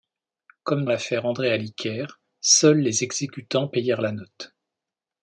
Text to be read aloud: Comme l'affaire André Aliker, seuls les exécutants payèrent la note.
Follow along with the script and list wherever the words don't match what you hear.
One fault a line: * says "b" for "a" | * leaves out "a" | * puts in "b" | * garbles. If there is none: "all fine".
all fine